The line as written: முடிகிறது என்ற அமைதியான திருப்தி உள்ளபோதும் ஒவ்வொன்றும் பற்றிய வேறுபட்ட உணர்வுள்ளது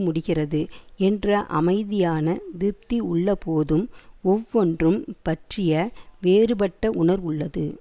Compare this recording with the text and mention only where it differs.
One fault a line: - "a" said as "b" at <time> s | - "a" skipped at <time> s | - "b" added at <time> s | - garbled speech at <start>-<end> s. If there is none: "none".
none